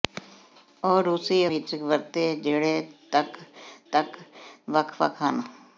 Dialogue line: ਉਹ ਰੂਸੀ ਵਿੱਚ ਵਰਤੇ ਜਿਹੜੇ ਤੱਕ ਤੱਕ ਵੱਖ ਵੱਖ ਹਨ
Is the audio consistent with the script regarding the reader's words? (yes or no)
yes